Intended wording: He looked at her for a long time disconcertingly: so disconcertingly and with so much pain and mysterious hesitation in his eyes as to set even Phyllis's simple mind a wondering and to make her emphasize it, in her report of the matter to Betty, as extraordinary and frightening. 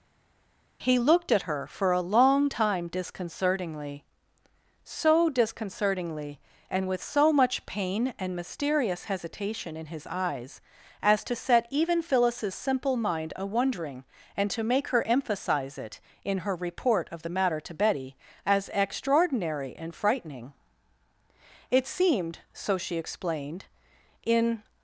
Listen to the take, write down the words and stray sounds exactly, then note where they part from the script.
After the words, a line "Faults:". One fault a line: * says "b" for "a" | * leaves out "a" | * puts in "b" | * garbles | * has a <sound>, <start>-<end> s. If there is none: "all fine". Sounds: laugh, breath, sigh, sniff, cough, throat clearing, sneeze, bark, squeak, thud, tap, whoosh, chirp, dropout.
He looked at her for a long time disconcertingly: so disconcertingly and with so much pain and mysterious hesitation in his eyes as to set even Phyllis's simple mind a wondering and to make her emphasize it, in her report of the matter to Betty, as extraordinary and frightening. It seemed, so she explained, in
Faults:
* puts in "It seemed so she explained in"